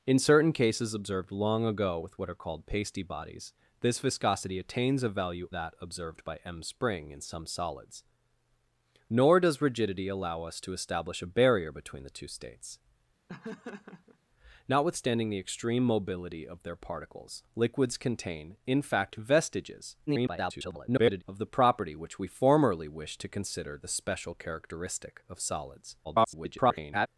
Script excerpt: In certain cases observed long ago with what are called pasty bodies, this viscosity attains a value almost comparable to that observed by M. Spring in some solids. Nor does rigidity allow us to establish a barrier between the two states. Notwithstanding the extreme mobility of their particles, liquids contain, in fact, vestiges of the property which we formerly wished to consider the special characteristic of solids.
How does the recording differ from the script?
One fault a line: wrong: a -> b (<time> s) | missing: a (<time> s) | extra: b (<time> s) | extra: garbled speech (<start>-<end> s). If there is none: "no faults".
missing: almost comparable to (5.5 s)
extra: garbled speech (20.1-21.2 s)
extra: garbled speech (26.0-27.1 s)